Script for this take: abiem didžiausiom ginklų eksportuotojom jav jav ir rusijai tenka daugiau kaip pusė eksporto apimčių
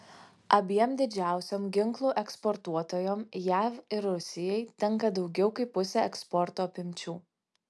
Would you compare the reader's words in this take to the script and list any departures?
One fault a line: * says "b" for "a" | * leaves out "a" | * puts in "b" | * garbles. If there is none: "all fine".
* leaves out "jav"